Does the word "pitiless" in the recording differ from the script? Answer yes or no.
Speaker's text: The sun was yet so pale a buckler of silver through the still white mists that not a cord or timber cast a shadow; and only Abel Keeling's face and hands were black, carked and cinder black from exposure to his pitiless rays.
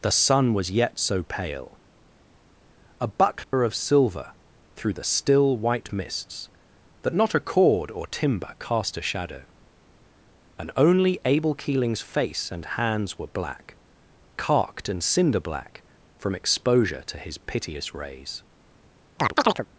yes